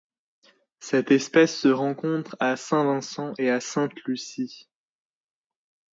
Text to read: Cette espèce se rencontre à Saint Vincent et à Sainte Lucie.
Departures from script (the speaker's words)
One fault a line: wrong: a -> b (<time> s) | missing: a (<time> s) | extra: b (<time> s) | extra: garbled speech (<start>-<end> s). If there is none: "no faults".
no faults